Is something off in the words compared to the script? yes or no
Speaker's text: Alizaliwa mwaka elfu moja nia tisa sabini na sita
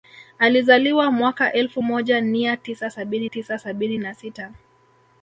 yes